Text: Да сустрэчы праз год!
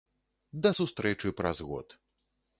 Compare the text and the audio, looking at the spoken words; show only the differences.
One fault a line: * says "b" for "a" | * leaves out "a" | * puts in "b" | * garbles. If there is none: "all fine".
all fine